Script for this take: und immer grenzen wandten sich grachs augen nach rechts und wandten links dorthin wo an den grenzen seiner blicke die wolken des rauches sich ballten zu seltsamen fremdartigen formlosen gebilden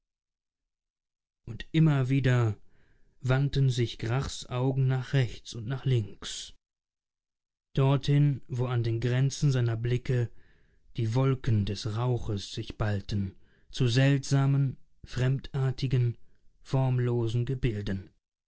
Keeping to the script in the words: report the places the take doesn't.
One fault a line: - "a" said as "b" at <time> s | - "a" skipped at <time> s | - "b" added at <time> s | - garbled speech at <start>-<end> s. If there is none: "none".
- "grenzen" said as "wieder" at 2.1 s
- "wandten" said as "nach" at 5.7 s